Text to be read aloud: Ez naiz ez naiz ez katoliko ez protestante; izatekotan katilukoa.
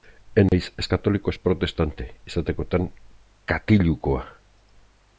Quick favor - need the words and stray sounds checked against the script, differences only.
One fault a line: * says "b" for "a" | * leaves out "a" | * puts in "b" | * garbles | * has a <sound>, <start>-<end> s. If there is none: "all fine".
* has a dropout, 0.5-0.5 s
* leaves out "naiz ez"